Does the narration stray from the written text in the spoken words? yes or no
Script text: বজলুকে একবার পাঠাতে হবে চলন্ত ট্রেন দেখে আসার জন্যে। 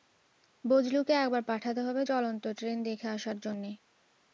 no